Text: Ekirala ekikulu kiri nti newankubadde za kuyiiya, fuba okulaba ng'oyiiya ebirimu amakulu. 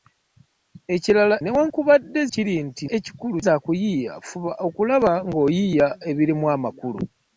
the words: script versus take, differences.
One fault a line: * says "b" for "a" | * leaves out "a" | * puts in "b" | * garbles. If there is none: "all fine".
* says "newankubadde" for "ekikulu"
* says "ekikulu" for "newankubadde"